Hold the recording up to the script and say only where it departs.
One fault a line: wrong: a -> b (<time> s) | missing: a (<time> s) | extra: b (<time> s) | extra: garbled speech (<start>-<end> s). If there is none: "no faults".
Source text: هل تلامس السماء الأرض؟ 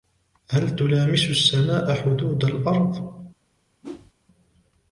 extra: حدود (1.9 s)